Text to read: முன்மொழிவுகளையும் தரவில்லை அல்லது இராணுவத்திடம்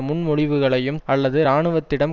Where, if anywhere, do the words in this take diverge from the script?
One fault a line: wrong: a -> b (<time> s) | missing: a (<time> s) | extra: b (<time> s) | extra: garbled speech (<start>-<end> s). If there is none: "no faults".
missing: தரவில்லை (1.0 s)